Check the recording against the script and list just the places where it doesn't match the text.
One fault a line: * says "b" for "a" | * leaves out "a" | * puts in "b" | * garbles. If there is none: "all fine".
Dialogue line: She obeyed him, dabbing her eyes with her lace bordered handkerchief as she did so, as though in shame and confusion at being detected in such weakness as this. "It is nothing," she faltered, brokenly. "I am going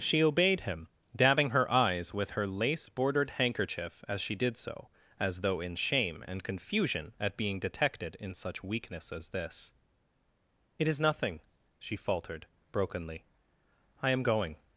all fine